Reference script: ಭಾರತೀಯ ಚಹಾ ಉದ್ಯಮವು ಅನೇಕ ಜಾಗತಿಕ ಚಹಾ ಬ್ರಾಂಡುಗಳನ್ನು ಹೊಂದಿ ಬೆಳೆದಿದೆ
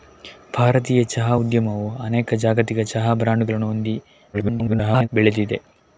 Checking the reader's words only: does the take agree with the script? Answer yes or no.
no